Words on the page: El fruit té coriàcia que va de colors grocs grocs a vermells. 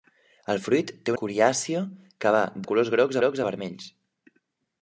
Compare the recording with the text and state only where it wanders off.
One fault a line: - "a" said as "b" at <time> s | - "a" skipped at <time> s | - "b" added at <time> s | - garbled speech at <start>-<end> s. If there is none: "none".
none